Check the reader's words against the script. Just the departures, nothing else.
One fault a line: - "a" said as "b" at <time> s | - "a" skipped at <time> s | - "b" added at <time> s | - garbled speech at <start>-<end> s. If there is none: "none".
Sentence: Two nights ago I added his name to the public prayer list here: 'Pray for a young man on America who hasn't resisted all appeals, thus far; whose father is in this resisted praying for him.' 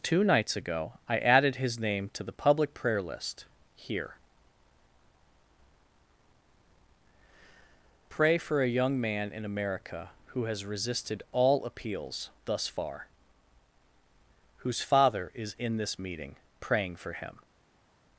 - "on" said as "in" at 9.3 s
- "hasn't" said as "has" at 10.4 s
- "resisted" said as "meeting" at 16.0 s